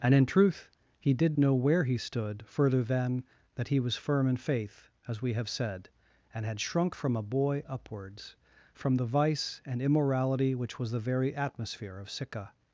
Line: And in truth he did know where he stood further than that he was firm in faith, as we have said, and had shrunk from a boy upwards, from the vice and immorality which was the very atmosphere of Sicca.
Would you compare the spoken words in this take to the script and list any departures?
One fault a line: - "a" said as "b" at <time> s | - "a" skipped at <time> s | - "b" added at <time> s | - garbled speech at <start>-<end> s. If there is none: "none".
none